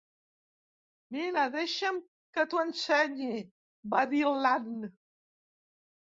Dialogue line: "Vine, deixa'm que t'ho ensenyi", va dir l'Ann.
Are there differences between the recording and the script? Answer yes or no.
no